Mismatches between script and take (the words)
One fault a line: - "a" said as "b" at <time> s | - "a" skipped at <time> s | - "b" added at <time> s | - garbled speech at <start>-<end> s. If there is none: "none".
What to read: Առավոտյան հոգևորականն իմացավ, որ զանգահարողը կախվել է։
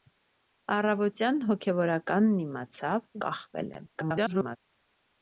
- "որ զանգահարողը" skipped at 3.1 s
- garbled speech at 3.9-4.6 s